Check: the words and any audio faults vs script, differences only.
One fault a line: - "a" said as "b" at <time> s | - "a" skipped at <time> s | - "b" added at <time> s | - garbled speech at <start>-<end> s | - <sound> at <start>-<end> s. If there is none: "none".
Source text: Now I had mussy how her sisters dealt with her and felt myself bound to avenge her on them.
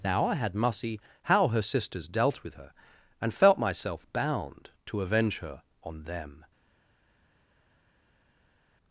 none